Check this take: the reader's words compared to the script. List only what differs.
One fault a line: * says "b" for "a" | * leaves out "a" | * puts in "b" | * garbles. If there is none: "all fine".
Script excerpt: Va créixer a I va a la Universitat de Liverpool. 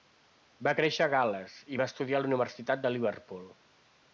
* puts in "Gal·les"
* puts in "estudiar"